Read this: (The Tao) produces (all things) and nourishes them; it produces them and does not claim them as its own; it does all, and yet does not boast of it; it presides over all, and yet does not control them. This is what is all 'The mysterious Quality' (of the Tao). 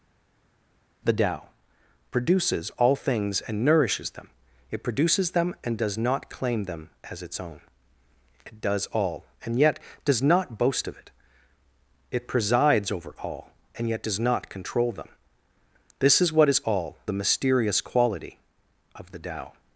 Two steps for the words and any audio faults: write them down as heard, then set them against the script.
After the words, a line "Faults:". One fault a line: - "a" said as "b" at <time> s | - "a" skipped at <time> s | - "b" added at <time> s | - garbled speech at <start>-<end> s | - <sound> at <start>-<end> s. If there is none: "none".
(The Tao) produces (all things) and nourishes them; it produces them and does not claim them as its own; it does all, and yet does not boast of it; it presides over all, and yet does not control them. This is what is all 'The mysterious Quality' (of the Tao).
Faults:
none